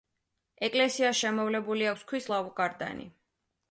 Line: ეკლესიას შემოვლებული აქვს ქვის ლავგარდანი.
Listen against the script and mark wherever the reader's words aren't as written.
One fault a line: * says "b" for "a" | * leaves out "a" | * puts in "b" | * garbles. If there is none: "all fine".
all fine